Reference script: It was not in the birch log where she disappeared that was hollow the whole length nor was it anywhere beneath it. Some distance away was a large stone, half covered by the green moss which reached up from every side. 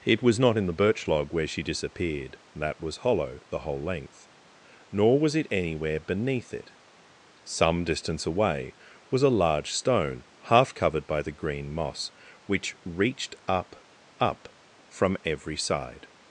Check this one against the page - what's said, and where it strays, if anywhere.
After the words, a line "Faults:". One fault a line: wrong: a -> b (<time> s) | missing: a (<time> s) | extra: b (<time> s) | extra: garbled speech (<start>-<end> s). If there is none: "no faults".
It was not in the birch log where she disappeared that was hollow the whole length nor was it anywhere beneath it. Some distance away was a large stone, half covered by the green moss which reached up up from every side.
Faults:
extra: up (14.2 s)